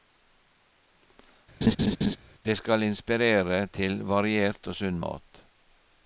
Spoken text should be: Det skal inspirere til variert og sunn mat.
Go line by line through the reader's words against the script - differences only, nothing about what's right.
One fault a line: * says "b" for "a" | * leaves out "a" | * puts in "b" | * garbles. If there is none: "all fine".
all fine